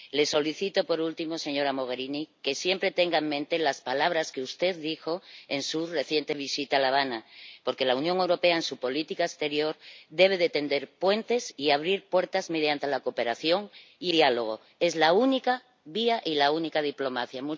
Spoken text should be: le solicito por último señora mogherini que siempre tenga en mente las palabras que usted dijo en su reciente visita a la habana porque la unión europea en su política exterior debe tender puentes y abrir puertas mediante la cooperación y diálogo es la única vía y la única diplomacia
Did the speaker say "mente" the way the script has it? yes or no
yes